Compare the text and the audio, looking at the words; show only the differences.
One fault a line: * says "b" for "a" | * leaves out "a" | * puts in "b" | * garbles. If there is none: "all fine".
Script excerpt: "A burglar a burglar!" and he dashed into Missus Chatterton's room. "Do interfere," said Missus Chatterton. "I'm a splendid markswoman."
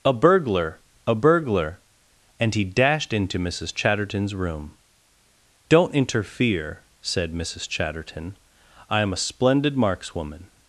* says "Don't" for "Do"